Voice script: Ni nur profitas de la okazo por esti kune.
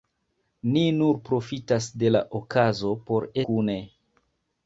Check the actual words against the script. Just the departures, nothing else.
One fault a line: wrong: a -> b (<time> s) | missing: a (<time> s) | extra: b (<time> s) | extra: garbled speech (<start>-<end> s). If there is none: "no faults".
missing: esti (3.3 s)